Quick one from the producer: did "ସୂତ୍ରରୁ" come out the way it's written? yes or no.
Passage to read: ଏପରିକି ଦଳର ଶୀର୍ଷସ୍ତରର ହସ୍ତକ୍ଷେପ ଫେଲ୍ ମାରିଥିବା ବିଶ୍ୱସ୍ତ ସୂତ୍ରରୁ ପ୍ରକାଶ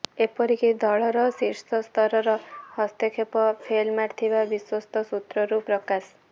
yes